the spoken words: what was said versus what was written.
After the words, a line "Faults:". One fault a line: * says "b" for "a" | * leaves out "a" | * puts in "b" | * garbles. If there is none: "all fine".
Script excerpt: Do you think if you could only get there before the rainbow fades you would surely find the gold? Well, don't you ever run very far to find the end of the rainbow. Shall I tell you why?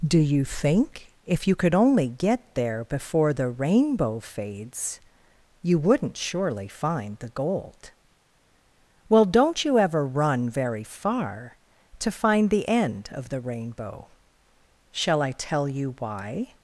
Do you think if you could only get there before the rainbow fades you wouldn't surely find the gold? Well, don't you ever run very far to find the end of the rainbow. Shall I tell you why?
Faults:
* says "wouldn't" for "would"